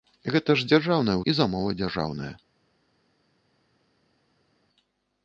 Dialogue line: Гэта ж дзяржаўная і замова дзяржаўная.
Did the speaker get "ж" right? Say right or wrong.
right